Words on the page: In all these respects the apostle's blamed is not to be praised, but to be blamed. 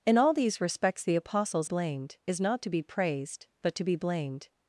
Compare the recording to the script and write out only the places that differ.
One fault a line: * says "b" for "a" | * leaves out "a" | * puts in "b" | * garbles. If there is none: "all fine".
all fine